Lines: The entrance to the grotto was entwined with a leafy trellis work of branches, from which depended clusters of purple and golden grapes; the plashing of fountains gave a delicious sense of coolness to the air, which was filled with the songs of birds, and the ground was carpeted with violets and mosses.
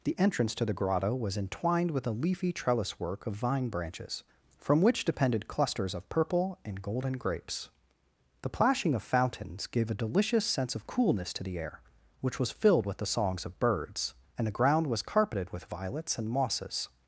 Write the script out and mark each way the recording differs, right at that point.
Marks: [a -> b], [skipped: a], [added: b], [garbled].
The entrance to the grotto was entwined with a leafy trellis work of [added: vine] branches, from which depended clusters of purple and golden grapes; the plashing of fountains gave a delicious sense of coolness to the air, which was filled with the songs of birds, and the ground was carpeted with violets and mosses.